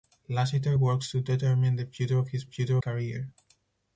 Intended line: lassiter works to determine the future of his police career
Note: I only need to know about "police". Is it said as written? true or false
false